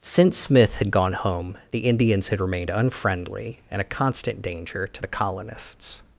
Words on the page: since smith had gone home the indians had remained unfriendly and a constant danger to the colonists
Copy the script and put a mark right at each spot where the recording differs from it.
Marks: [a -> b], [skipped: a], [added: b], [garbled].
since smith had gone home the indians had remained unfriendly and a constant danger to the colonists